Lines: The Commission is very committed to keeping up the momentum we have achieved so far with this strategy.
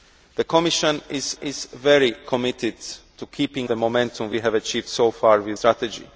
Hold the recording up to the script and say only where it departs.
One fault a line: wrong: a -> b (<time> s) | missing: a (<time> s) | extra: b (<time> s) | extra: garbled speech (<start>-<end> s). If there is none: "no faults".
extra: is (1.4 s)
missing: up (3.7 s)
missing: this (5.6 s)